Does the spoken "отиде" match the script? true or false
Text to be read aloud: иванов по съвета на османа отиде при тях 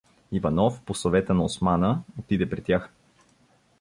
true